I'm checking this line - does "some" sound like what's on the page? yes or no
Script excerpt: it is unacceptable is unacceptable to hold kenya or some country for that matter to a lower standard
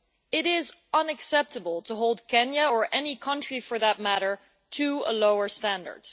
no